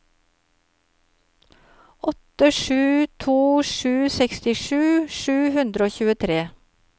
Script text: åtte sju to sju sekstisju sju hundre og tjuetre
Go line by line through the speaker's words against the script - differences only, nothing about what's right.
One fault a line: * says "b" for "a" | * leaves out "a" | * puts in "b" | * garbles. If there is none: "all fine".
all fine